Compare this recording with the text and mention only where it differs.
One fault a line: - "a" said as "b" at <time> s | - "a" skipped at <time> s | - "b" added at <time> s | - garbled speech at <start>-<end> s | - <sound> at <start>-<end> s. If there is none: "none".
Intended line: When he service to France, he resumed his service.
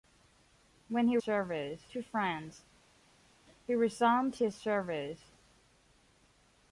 none